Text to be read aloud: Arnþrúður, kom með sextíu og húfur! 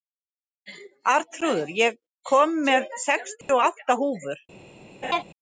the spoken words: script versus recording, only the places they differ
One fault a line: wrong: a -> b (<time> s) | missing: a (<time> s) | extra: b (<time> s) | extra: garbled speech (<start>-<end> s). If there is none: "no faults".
extra: ég (1.8 s)
extra: átta (3.7 s)